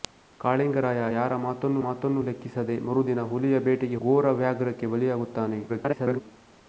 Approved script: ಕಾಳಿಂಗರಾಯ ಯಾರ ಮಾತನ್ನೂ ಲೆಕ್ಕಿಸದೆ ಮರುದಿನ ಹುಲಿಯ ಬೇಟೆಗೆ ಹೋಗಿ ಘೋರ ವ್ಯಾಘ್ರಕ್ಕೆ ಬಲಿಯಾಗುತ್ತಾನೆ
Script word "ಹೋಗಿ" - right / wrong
wrong